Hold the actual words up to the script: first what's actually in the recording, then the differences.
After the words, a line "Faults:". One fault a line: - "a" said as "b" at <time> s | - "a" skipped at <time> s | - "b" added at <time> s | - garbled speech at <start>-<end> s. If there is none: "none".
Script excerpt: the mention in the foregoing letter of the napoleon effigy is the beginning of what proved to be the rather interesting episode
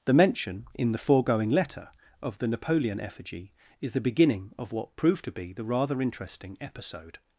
the mention in the foregoing letter of the napoleon effigy is the beginning of what proved to be the rather interesting episode
Faults:
none